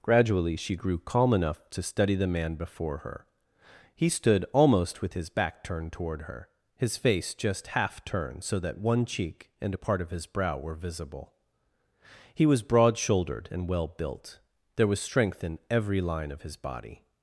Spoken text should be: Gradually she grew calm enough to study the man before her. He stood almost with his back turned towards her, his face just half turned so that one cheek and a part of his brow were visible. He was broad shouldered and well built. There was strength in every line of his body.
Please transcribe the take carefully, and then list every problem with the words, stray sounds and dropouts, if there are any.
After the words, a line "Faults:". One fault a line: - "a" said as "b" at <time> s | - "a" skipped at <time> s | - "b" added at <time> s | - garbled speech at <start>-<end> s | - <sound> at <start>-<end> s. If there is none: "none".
Gradually she grew calm enough to study the man before her. He stood almost with his back turned toward her, his face just half turned so that one cheek and a part of his brow were visible. He was broad shouldered and well built. There was strength in every line of his body.
Faults:
- "towards" said as "toward" at 5.9 s